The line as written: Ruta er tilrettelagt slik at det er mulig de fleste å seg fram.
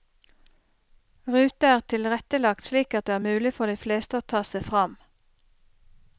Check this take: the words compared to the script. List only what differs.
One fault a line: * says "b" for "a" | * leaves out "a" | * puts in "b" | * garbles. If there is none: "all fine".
* puts in "for"
* puts in "ta"